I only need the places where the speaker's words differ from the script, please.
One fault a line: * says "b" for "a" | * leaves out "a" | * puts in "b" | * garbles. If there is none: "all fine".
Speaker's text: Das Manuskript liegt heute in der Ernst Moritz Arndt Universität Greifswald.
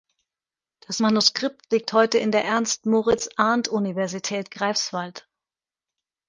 all fine